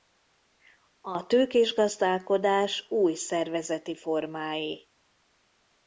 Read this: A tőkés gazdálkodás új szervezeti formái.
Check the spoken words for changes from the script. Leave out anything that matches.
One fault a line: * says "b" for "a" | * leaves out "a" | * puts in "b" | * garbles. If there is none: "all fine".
all fine